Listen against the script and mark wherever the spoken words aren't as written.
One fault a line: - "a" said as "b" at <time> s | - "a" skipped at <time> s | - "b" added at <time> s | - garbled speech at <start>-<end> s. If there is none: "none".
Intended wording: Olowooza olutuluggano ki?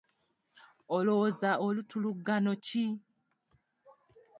none